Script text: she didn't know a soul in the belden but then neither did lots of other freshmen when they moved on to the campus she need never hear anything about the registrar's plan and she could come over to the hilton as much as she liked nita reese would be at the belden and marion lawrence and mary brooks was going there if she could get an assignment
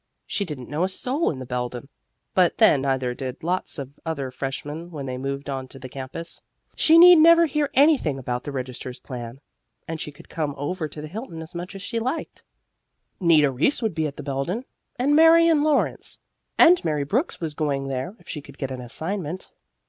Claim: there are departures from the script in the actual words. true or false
false